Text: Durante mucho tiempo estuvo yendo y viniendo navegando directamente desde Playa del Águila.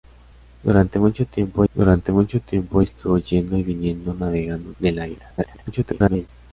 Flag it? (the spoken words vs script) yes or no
yes